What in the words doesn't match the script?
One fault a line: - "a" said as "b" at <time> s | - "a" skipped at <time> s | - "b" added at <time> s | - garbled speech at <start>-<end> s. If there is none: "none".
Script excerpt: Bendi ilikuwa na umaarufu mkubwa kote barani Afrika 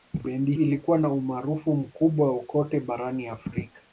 none